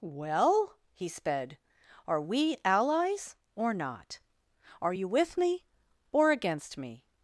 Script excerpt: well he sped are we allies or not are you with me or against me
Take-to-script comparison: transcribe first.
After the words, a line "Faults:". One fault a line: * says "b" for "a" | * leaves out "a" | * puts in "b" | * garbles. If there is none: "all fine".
well he sped are we allies or not are you with me or against me
Faults:
all fine